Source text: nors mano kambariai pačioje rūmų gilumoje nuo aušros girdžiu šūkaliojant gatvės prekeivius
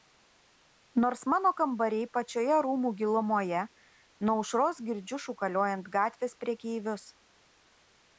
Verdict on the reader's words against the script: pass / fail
pass